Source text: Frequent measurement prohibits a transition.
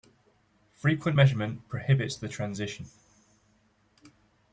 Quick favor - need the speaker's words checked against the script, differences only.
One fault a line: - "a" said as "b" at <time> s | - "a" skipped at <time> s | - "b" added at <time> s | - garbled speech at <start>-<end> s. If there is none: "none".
- "a" said as "the" at 2.2 s